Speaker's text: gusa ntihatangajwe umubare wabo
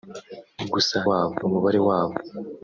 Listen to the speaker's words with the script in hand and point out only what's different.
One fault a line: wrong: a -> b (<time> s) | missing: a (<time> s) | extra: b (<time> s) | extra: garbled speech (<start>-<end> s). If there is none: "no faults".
wrong: ntihatangajwe -> wabo (1.1 s)